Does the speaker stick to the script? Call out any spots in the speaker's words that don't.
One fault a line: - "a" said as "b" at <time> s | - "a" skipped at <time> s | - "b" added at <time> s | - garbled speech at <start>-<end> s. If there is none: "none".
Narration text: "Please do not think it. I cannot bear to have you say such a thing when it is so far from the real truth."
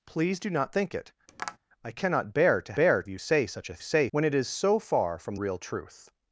- "have" said as "bear" at 2.7 s
- "thing" said as "say" at 3.8 s
- "the" skipped at 5.4 s